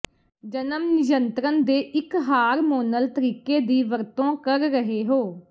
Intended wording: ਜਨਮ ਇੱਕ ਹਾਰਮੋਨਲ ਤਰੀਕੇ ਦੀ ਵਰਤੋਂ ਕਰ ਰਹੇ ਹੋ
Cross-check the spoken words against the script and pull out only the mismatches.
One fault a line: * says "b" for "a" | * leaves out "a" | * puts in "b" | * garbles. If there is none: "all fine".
* puts in "ਨਿਯੰਤਰਣ ਦੇ"